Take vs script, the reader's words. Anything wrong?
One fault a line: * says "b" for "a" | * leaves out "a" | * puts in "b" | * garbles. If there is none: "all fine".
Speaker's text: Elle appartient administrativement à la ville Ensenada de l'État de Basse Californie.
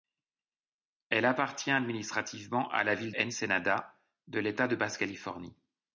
all fine